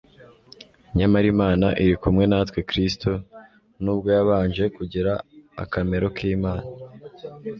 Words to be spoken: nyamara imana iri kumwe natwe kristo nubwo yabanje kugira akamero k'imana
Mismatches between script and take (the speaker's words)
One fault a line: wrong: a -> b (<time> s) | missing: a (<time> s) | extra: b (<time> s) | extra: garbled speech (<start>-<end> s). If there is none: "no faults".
no faults